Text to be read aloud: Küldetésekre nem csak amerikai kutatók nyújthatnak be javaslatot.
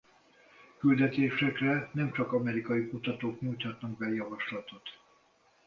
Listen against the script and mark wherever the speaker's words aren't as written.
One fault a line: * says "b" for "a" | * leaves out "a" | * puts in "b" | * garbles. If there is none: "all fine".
all fine